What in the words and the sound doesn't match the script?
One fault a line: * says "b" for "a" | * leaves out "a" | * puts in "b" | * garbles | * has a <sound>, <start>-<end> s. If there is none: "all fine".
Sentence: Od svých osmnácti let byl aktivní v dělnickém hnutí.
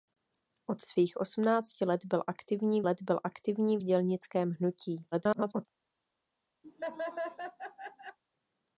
* puts in "let byl aktivní"
* garbles
* has a laugh, 6.6-8.2 s